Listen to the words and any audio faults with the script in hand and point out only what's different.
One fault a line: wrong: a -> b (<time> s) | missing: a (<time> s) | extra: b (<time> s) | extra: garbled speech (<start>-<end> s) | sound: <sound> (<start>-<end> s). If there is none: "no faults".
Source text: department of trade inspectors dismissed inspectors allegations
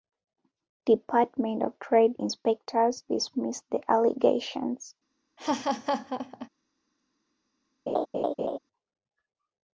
wrong: inspectors -> the (3.7 s)
sound: laugh (5.4-6.5 s)
sound: laugh (7.9-8.6 s)